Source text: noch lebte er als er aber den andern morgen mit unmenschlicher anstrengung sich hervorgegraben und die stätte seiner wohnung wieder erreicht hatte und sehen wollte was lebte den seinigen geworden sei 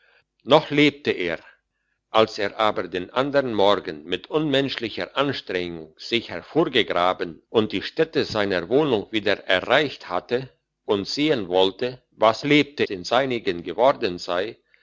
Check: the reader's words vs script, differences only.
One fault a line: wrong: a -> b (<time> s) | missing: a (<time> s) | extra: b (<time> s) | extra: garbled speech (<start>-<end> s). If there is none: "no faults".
no faults